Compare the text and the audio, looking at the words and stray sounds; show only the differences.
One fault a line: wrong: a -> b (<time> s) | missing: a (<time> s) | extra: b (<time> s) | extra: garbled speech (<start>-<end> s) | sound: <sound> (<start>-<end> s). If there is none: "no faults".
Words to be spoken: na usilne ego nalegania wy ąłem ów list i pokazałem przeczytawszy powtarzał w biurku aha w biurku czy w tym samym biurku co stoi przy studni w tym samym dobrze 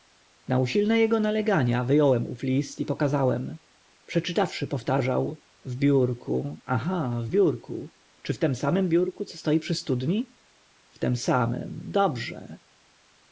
no faults